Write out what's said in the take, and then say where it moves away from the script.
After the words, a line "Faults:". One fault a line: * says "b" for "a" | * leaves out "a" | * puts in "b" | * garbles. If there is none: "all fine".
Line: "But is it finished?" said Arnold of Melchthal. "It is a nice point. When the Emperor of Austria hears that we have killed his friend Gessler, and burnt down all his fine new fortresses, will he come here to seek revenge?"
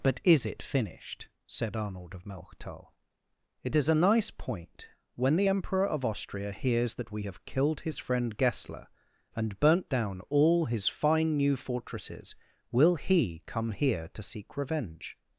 "But is it finished?" said Arnold of Melchthal. "It is a nice point. When the Emperor of Austria hears that we have killed his friend Gessler, and burnt down all his fine new fortresses, will he come here to seek revenge?"
Faults:
all fine